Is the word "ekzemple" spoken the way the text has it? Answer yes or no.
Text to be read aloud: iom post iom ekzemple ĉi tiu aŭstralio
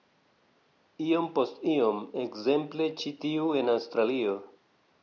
yes